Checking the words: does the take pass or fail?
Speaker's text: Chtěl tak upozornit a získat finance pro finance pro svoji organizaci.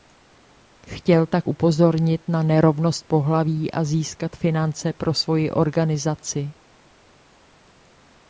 fail